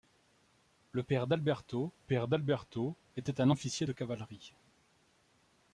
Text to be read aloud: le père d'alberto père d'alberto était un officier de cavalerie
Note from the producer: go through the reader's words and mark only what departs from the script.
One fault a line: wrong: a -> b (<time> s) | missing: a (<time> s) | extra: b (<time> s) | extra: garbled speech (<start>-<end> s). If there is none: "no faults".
no faults